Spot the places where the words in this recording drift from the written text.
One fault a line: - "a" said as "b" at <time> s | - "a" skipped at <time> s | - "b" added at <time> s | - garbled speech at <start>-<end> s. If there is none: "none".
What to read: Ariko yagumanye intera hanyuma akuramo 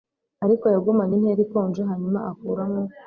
- "ikonje" added at 1.5 s